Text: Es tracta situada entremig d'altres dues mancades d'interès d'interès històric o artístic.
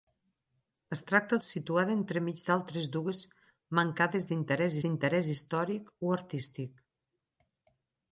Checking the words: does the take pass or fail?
pass